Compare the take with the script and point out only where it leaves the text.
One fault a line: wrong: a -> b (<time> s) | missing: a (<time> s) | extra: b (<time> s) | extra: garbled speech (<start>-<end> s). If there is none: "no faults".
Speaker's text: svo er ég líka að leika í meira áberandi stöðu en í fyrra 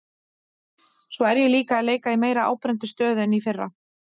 no faults